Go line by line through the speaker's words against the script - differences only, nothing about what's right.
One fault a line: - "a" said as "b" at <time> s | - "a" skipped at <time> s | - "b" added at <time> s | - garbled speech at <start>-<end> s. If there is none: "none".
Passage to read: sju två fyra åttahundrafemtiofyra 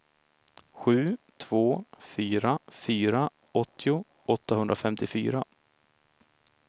- "fyra åttio" added at 2.7 s